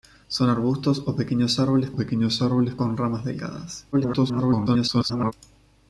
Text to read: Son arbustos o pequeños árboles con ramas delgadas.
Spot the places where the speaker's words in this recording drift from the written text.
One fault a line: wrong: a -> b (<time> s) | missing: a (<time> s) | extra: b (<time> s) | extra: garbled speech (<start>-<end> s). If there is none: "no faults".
extra: pequeños árboles (1.9 s)
extra: garbled speech (3.9-5.3 s)